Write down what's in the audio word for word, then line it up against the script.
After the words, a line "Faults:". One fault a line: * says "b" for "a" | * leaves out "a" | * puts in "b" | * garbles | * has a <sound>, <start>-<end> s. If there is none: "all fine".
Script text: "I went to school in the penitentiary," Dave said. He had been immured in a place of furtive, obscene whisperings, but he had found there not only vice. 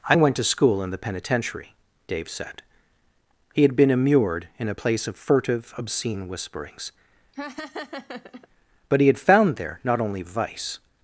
"I went to school in the penitentiary," Dave said. He had been immured in a place of furtive, obscene whisperings, but he had found there not only vice.
Faults:
* has a laugh, 7.3-8.5 s